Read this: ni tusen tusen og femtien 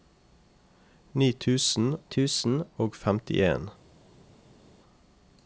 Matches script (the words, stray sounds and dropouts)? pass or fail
pass